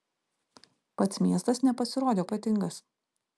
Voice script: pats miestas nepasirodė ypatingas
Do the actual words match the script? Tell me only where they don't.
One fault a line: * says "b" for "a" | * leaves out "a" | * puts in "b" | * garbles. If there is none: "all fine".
all fine